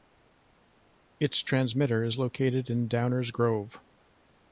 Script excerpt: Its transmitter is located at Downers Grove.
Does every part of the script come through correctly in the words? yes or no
no